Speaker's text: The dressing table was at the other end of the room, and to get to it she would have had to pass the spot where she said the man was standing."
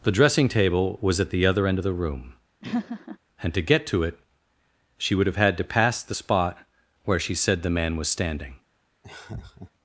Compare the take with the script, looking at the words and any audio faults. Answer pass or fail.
fail